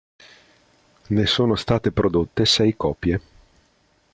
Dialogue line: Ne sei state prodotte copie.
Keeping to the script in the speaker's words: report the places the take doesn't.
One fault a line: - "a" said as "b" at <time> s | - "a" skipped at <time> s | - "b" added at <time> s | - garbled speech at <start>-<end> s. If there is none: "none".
- "sei" said as "sono" at 1.3 s
- "sei" added at 2.5 s